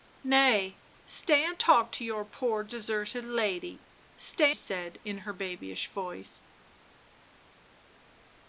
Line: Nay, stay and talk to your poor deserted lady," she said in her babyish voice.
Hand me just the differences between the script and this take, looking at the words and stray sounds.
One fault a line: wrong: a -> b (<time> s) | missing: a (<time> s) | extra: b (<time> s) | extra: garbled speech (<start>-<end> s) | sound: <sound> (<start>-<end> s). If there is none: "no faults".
wrong: she -> stay (4.2 s)